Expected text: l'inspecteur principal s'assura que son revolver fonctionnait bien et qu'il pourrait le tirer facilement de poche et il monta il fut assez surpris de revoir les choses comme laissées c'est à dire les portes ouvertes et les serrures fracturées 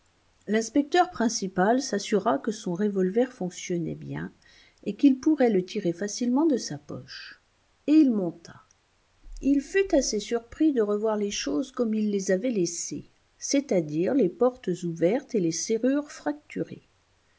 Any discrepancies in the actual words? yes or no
yes